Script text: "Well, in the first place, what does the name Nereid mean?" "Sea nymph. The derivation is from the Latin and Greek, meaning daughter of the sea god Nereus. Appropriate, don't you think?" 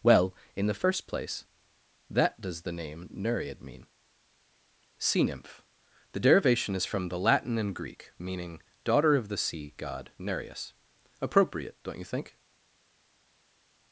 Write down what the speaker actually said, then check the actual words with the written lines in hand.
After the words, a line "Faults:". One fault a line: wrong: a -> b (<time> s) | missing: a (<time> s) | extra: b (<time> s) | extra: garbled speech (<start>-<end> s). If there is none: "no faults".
"Well, in the first place, that does the name Nereid mean?" "Sea nymph. The derivation is from the Latin and Greek, meaning daughter of the sea god Nereus. Appropriate, don't you think?"
Faults:
wrong: what -> that (2.1 s)